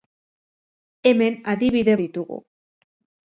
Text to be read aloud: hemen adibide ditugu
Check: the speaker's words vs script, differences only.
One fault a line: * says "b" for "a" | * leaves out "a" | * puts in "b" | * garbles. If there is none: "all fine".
all fine